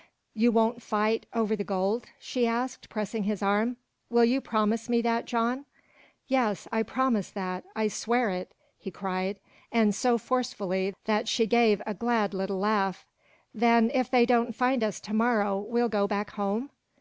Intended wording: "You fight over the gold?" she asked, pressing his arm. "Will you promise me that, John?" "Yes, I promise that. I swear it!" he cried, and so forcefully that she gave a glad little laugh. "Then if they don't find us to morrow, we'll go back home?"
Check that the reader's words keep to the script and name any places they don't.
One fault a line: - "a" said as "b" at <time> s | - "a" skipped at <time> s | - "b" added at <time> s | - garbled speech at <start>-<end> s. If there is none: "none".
- "won't" added at 0.5 s